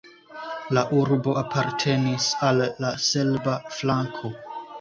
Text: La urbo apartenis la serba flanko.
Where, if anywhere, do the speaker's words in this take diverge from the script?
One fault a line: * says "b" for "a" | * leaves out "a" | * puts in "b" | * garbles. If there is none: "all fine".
* puts in "al"